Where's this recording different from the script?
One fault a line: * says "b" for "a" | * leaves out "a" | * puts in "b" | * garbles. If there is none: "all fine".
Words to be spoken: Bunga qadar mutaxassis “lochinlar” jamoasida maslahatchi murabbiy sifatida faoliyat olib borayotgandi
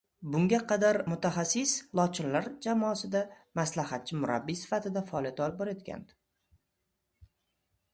all fine